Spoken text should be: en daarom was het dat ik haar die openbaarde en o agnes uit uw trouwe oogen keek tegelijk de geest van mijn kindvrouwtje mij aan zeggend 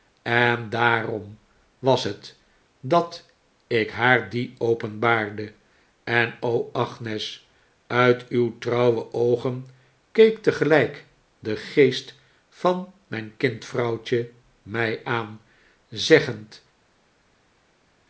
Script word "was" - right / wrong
right